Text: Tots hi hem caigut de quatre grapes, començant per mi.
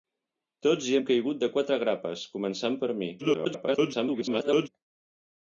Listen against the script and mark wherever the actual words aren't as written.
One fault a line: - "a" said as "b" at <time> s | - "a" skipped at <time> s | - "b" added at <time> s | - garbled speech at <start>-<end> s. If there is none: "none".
- garbled speech at 3.2-4.7 s